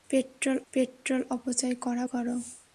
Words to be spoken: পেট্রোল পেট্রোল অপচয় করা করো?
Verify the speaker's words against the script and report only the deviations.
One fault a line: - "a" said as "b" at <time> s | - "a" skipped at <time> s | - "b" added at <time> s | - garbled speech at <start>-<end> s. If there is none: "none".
none